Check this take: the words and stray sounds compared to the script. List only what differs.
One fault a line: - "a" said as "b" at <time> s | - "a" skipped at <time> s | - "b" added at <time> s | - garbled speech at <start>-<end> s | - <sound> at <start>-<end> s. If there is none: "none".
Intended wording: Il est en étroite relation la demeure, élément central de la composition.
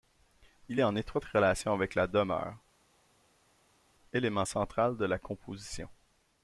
- "avec" added at 1.7 s